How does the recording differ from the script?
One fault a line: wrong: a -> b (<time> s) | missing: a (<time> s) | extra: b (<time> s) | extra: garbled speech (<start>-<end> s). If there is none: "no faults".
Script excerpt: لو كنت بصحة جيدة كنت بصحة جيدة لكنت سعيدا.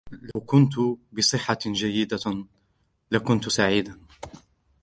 missing: كنت بصحة جيدة (2.5 s)